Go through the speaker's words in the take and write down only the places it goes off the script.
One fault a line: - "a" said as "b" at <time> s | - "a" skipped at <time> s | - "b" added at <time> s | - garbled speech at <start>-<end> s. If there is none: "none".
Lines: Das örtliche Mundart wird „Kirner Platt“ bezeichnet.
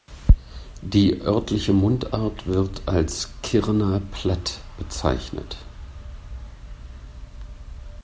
- "Das" said as "Die" at 0.8 s
- "als" added at 2.9 s